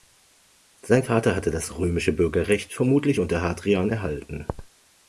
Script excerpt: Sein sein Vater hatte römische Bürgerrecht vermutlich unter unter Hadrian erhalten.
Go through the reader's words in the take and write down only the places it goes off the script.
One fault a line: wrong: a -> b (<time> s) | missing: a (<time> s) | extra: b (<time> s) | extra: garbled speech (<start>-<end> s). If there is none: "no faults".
missing: sein (1.0 s)
extra: das (1.5 s)
missing: unter (3.4 s)